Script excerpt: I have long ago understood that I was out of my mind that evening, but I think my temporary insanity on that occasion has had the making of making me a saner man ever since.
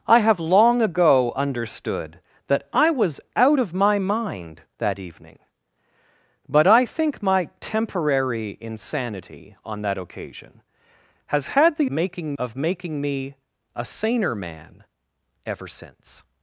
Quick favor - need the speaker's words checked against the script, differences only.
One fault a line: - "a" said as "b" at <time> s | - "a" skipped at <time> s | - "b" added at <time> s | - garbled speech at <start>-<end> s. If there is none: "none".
none